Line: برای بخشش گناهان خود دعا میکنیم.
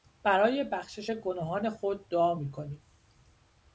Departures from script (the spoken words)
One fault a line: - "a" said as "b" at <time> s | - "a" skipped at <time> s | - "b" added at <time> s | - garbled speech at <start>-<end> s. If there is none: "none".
none